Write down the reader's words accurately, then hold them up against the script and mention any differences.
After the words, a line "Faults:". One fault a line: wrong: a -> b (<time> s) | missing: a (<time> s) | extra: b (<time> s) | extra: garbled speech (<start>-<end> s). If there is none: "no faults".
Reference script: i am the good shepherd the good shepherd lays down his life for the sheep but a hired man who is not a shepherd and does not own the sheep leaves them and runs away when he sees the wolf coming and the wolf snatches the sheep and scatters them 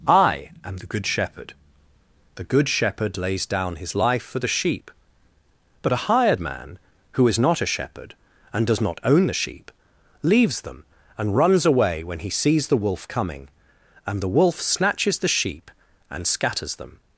i am the good shepherd the good shepherd lays down his life for the sheep but a hired man who is not a shepherd and does not own the sheep leaves them and runs away when he sees the wolf coming and the wolf snatches the sheep and scatters them
Faults:
no faults